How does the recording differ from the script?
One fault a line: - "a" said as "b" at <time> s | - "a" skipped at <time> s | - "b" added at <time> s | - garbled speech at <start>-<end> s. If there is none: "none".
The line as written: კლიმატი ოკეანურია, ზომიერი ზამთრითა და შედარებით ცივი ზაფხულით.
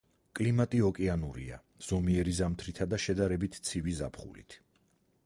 none